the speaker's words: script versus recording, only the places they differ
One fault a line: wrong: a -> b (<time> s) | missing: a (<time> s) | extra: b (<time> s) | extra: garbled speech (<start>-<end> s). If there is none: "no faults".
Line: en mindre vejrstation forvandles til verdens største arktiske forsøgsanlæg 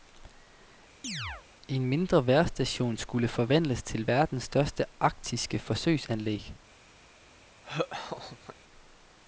extra: skulle (3.0 s)